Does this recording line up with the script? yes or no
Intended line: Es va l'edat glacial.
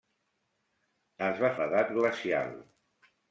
yes